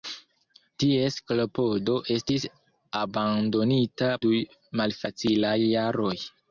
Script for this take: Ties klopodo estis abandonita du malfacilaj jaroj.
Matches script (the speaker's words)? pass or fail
pass